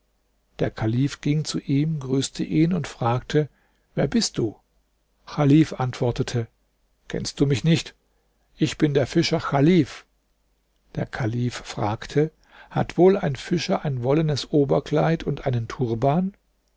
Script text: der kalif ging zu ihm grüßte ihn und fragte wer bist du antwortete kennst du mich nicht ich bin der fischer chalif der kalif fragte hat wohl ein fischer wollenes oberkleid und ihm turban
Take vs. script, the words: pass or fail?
fail